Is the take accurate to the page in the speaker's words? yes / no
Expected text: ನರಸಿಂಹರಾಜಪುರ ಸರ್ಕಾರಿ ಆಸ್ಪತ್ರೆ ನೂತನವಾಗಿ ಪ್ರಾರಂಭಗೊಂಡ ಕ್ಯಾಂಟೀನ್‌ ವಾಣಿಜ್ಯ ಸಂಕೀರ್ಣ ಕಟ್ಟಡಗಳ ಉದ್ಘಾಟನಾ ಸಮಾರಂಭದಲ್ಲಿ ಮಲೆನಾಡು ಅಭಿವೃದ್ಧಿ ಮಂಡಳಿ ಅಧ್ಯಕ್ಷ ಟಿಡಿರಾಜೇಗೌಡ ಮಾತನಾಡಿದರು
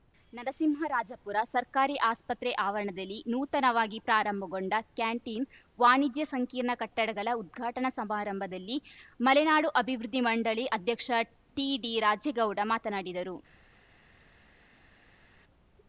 no